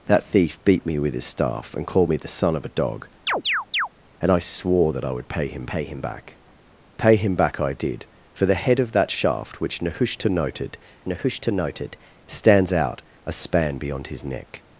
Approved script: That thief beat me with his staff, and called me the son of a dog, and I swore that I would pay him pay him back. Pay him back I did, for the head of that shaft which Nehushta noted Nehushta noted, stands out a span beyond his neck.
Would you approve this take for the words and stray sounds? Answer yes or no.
no